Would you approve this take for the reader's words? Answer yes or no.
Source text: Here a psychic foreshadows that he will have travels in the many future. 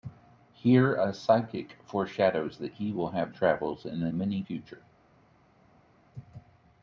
yes